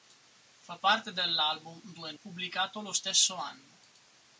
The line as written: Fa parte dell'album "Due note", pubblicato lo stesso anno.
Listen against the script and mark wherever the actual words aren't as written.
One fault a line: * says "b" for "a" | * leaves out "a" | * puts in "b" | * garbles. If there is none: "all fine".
* leaves out "note"